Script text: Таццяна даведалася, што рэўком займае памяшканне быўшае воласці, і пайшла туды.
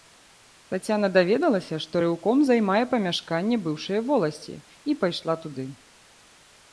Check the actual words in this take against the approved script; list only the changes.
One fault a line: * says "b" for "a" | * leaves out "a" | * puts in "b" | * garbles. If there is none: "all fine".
all fine